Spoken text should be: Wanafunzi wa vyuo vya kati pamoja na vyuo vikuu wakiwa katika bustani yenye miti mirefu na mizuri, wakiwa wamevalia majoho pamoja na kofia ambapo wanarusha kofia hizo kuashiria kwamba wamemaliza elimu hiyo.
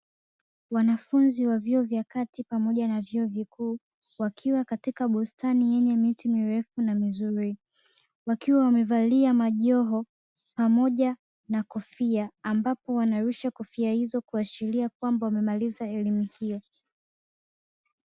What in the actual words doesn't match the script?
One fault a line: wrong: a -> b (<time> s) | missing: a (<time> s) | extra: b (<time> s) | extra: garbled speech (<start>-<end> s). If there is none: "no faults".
no faults